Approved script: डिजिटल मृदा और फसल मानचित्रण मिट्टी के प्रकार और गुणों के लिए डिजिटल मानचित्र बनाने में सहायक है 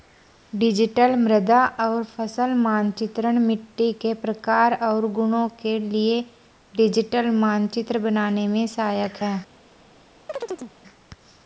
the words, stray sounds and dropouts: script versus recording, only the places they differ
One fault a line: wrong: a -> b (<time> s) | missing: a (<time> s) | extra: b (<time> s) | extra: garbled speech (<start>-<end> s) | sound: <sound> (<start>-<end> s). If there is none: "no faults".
sound: chirp (10.3-10.7 s)